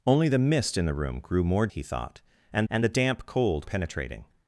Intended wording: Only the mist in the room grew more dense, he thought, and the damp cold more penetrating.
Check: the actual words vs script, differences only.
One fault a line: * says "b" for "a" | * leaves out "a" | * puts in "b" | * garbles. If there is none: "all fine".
* leaves out "dense"
* puts in "and"
* leaves out "more"